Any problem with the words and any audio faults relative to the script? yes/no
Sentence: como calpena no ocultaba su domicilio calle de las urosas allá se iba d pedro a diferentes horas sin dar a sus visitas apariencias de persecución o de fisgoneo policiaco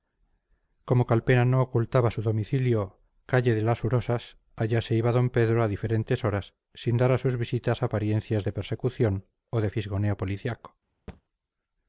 yes